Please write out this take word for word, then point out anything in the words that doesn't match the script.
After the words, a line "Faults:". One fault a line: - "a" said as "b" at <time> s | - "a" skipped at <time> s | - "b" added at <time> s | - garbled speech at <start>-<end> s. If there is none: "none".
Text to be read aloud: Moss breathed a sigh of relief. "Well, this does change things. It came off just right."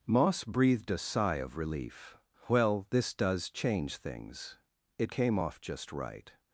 Moss breathed a sigh of relief. "Well, this does change things. It came off just right."
Faults:
none